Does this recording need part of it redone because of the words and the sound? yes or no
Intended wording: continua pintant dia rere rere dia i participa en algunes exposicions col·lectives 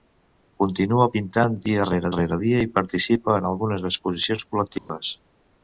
yes